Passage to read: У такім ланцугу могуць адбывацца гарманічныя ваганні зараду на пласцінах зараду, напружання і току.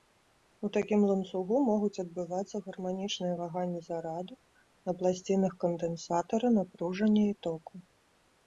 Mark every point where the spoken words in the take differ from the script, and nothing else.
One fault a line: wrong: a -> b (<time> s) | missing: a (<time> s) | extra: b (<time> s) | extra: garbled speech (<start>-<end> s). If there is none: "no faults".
wrong: зараду -> кандэнсатара (5.7 s)